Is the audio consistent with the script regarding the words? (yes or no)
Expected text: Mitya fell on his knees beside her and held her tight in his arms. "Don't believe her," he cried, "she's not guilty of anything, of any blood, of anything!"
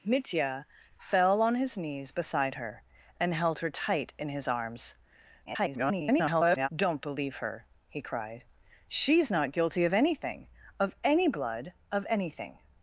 no